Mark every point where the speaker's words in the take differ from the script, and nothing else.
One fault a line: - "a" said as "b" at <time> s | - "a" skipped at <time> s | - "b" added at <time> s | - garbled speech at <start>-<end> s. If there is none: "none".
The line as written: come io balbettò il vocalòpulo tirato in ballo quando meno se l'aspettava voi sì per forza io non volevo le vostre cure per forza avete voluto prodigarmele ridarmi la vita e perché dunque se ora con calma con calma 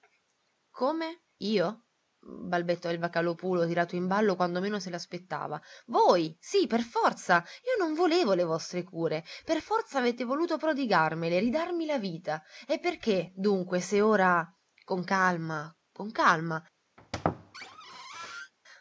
none